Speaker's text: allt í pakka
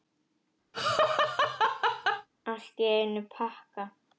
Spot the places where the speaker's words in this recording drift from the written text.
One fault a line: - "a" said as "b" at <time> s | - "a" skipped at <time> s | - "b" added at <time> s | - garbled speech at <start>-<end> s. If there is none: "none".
- "einum" added at 3.0 s